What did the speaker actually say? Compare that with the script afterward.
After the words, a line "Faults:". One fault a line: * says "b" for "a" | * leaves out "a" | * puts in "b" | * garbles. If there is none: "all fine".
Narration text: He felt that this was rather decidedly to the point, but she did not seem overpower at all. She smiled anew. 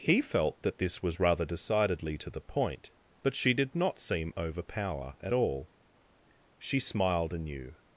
He felt that this was rather decidedly to the point, but she did not seem overpower at all. She smiled anew.
Faults:
all fine